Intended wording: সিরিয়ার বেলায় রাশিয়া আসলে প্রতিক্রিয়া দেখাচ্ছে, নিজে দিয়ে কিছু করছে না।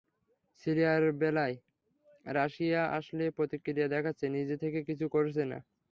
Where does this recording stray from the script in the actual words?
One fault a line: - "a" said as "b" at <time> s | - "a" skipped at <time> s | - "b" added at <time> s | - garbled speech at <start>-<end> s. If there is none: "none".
- "দিয়ে" said as "থেকে" at 4.6 s